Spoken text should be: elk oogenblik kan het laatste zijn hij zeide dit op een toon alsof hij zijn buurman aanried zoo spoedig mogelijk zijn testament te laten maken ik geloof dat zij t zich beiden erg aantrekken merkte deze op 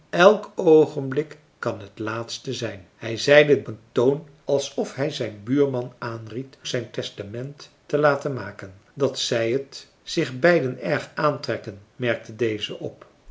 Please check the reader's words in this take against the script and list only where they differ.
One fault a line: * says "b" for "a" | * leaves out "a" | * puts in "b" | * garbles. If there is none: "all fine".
* leaves out "dit op"
* leaves out "zoo spoedig mogelijk"
* leaves out "ik geloof"